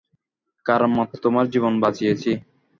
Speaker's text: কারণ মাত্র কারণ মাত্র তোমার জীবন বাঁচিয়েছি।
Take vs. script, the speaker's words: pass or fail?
fail